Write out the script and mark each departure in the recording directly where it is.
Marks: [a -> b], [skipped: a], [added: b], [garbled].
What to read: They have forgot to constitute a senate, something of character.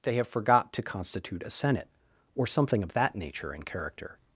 They have forgot to constitute a senate, [added: or] something of [added: that nature and] character.